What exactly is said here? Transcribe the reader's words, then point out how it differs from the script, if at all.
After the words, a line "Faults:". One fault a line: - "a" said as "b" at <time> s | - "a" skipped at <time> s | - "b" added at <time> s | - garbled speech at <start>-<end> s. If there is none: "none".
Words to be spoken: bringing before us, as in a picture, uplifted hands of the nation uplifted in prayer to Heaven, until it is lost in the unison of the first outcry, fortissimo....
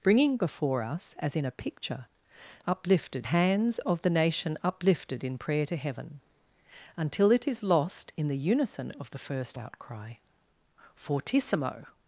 bringing before us, as in a picture, uplifted hands of the nation uplifted in prayer to Heaven, until it is lost in the unison of the first outcry, fortissimo....
Faults:
none